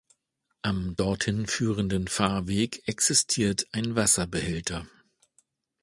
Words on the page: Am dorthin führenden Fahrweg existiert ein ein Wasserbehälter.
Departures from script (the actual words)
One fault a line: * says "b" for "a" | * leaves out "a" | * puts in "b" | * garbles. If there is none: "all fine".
* leaves out "ein"